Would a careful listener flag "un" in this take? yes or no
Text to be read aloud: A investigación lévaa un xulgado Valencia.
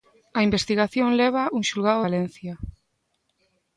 no